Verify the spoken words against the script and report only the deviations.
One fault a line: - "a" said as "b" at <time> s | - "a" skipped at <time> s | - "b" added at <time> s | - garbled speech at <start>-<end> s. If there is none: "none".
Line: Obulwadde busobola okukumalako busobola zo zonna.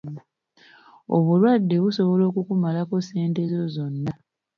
- "busobola" said as "ssente" at 3.0 s